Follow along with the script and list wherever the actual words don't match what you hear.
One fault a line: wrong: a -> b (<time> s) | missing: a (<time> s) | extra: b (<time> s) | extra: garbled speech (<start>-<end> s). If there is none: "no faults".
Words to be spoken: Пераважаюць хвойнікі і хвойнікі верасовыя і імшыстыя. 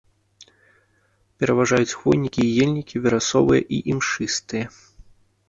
wrong: хвойнікі -> ельнікі (2.6 s)